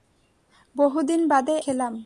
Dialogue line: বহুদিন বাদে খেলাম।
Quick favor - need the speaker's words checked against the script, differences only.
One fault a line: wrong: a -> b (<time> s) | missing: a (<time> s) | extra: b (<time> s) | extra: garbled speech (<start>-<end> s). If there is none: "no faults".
no faults